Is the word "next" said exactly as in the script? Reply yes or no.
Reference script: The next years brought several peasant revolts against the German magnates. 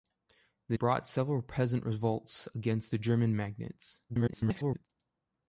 no